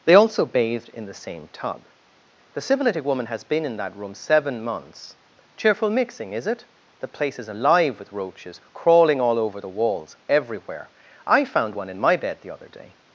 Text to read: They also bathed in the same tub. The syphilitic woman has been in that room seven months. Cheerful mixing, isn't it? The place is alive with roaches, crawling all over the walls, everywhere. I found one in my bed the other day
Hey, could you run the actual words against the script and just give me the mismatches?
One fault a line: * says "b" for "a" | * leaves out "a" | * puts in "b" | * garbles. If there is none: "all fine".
* says "is" for "isn't"